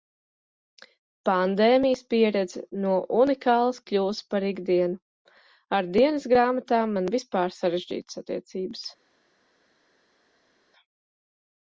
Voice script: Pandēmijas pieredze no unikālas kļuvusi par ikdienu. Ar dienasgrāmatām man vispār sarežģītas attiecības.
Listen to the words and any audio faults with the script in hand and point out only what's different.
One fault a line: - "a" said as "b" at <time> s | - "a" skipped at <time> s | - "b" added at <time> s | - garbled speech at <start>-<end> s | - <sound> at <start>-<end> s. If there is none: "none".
none